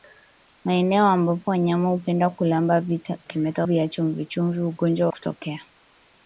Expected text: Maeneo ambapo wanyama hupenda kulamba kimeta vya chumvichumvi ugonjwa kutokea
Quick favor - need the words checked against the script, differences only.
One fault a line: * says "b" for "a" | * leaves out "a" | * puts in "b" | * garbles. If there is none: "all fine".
all fine